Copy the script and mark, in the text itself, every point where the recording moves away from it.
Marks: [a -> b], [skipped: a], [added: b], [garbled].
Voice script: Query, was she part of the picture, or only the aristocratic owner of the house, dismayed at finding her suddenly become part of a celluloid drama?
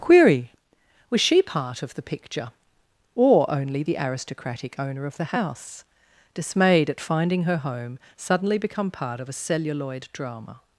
Query, was she part of the picture, or only the aristocratic owner of the house, dismayed at finding her [added: home] suddenly become part of a celluloid drama?